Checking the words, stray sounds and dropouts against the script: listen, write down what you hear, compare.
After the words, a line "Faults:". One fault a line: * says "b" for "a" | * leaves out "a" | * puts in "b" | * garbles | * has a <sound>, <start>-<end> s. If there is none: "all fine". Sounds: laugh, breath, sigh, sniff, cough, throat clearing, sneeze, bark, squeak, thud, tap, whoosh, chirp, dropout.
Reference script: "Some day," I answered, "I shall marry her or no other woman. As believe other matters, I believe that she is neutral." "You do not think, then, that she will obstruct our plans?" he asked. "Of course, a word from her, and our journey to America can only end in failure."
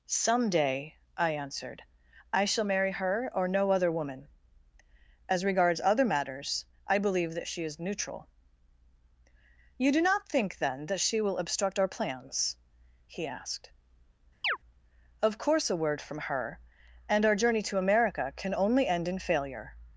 "Some day," I answered, "I shall marry her or no other woman. As regards other matters, I believe that she is neutral." "You do not think, then, that she will obstruct our plans?" he asked. "Of course, a word from her, and our journey to America can only end in failure."
Faults:
* says "regards" for "believe"
* has a chirp, 14.4-14.6 s